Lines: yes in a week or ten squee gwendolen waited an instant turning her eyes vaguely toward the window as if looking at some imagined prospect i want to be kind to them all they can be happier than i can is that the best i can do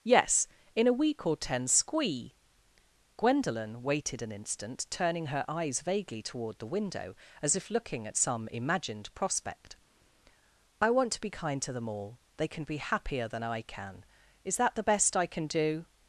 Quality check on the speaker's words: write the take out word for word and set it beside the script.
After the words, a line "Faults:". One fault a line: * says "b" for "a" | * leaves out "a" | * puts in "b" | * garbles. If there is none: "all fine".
yes in a week or ten squee gwendolen waited an instant turning her eyes vaguely toward the window as if looking at some imagined prospect i want to be kind to them all they can be happier than i can is that the best i can do
Faults:
all fine